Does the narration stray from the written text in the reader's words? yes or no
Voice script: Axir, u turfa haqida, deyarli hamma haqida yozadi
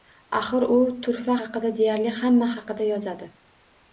no